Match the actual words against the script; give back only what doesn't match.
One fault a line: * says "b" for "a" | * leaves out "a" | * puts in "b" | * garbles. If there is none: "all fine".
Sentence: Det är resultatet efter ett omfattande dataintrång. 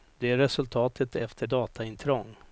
* leaves out "ett omfattande"